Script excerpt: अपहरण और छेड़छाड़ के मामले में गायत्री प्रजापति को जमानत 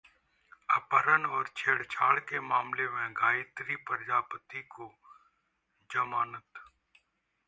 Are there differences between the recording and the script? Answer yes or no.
no